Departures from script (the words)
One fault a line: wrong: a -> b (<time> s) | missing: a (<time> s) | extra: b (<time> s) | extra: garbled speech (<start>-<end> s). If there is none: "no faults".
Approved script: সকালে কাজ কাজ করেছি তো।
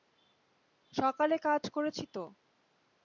missing: কাজ (1.6 s)